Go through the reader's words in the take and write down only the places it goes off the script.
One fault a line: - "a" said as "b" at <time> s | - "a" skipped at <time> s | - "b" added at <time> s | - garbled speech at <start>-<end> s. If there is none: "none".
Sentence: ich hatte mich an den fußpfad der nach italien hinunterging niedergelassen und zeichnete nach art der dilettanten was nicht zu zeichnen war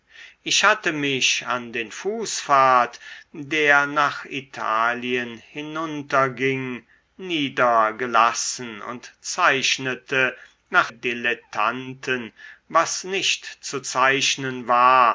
- "art der" skipped at 10.9 s